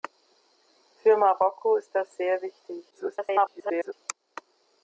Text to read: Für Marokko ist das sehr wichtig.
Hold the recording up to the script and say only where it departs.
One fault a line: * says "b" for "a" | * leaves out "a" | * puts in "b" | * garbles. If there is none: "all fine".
* garbles